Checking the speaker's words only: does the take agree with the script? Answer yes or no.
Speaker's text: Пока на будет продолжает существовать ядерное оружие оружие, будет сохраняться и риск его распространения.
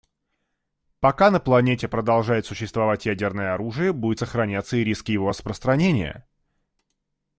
no